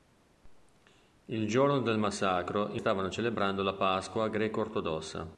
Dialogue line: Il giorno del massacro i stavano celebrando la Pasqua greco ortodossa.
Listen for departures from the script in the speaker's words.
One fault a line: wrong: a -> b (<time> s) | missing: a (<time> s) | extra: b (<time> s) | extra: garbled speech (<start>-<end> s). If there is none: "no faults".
no faults